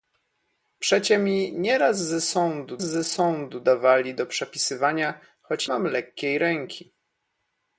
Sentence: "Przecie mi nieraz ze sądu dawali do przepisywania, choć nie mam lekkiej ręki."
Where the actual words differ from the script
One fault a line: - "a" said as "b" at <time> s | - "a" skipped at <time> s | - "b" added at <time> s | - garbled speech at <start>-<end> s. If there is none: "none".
- "ze sądu" added at 2.8 s
- "nie" skipped at 5.7 s